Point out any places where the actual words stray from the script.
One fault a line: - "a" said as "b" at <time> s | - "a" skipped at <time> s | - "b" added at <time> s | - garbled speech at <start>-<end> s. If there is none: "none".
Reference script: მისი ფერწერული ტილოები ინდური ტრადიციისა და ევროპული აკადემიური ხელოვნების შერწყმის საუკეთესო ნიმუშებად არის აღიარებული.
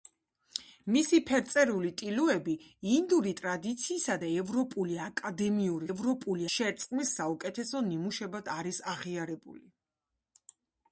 - "ხელოვნების" said as "ევროპული" at 5.9 s